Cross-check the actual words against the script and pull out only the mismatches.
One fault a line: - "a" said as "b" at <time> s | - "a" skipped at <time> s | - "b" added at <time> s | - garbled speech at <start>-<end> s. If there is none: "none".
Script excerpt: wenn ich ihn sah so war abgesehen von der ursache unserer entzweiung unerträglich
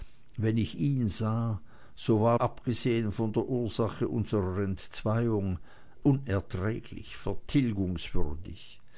none